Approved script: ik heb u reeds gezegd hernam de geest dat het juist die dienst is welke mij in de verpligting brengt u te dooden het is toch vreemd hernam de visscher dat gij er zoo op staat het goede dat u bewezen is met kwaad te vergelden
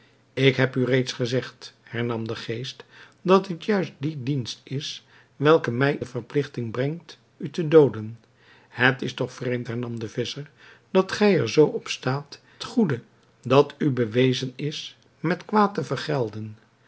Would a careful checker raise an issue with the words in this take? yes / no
yes